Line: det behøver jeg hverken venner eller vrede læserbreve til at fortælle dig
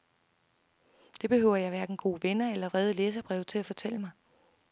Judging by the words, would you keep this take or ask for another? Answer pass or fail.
fail